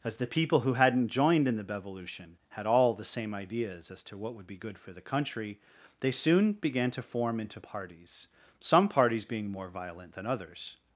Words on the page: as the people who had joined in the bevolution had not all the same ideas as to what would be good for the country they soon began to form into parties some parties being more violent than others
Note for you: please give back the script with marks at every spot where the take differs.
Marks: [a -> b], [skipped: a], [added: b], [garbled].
as the people who [had -> hadn't] joined in the bevolution had [skipped: not] all the same ideas as to what would be good for the country they soon began to form into parties some parties being more violent than others